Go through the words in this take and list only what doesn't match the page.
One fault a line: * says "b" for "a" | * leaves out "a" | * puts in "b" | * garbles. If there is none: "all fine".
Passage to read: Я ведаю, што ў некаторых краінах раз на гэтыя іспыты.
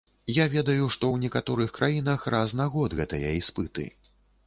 * puts in "год"